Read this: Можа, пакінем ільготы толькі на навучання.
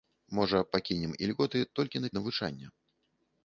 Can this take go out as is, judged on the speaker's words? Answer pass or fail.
pass